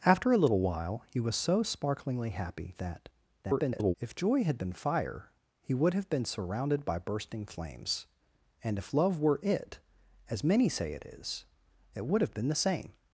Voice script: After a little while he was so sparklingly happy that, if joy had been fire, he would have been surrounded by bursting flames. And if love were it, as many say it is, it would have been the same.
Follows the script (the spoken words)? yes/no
no